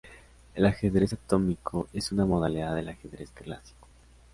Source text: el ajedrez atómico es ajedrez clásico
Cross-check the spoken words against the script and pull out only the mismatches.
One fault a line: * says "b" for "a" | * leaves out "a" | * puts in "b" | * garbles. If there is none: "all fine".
* puts in "una modalidad del"